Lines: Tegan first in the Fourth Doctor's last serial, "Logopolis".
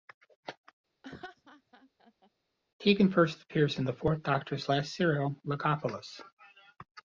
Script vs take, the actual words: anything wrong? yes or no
yes